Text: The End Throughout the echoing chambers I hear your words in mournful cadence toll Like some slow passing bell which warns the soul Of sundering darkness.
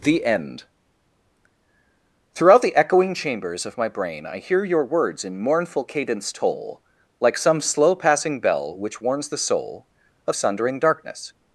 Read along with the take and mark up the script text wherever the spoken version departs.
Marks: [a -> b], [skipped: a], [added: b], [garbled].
The End Throughout the echoing chambers [added: of my brain] I hear your words in mournful cadence toll Like some slow passing bell which warns the soul Of sundering darkness.